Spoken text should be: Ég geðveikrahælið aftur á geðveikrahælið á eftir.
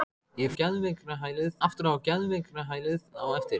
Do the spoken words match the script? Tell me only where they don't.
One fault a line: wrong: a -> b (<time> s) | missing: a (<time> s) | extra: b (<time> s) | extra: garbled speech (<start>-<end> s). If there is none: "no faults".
no faults